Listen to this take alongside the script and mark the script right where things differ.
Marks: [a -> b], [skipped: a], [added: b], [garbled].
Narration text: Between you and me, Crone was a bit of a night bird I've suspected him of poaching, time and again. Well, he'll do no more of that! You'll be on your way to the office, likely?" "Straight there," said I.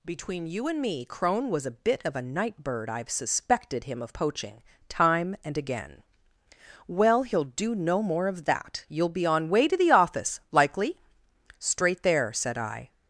Between you and me, Crone was a bit of a night bird I've suspected him of poaching, time and again. Well, he'll do no more of that! You'll be on [skipped: your] way to the office, likely?" "Straight there," said I.